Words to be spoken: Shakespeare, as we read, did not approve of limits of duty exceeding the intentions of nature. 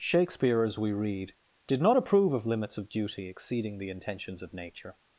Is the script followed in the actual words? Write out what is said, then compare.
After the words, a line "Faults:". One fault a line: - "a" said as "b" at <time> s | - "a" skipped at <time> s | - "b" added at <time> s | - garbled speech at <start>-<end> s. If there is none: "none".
Shakespeare, as we read, did not approve of limits of duty exceeding the intentions of nature.
Faults:
none